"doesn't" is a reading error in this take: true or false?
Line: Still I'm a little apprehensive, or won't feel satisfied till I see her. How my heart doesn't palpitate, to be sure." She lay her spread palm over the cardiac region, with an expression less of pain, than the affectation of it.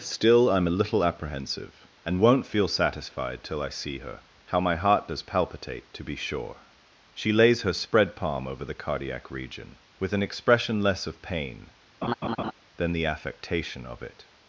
true